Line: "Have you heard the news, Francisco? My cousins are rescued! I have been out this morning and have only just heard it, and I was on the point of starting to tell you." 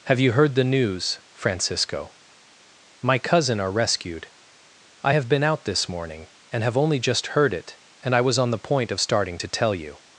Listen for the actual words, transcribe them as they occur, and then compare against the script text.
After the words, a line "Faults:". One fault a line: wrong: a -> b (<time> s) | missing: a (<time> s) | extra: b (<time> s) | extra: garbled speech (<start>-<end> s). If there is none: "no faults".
"Have you heard the news, Francisco? My cousin are rescued! I have been out this morning and have only just heard it, and I was on the point of starting to tell you."
Faults:
wrong: cousins -> cousin (3.2 s)